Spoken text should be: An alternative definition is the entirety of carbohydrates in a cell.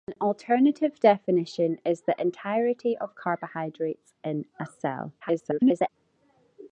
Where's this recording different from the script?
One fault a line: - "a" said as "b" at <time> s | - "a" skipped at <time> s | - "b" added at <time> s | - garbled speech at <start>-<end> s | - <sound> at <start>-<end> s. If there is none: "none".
- garbled speech at 5.2-5.9 s